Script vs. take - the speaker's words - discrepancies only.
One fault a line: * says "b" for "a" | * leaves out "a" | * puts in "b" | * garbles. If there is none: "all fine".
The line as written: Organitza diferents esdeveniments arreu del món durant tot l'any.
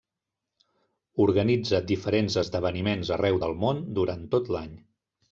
all fine